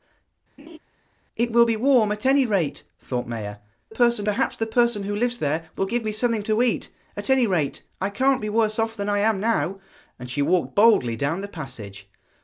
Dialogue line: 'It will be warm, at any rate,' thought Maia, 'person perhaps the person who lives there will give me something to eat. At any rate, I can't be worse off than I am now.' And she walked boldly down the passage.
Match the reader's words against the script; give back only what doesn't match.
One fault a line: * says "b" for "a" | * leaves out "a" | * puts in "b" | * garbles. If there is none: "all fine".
all fine